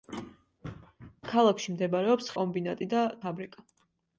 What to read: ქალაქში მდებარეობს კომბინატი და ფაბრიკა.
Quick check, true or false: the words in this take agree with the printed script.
true